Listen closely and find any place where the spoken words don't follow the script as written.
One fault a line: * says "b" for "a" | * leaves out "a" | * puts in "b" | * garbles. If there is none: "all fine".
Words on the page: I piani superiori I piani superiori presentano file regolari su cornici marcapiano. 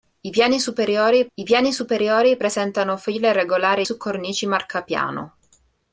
all fine